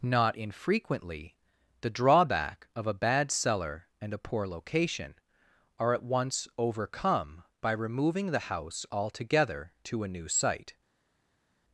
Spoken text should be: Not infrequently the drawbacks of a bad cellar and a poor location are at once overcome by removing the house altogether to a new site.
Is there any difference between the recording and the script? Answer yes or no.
yes